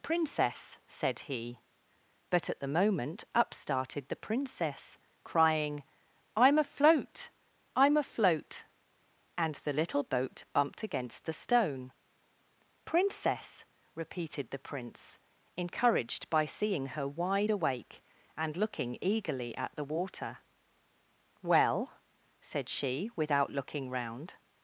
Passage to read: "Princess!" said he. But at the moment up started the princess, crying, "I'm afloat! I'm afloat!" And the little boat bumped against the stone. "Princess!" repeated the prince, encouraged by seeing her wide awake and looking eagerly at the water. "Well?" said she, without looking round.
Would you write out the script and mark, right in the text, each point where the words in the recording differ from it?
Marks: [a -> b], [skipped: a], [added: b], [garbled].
"Princess!" said he. But at the moment up started the princess, crying, "I'm afloat! I'm afloat!" And the little boat bumped against the stone. "Princess!" repeated the prince, encouraged by seeing her wide awake and looking eagerly at the water. "Well?" said she, without looking round.